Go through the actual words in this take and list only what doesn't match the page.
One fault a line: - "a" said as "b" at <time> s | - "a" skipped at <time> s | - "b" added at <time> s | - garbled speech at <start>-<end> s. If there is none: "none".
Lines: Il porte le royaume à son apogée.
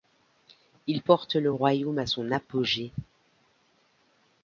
none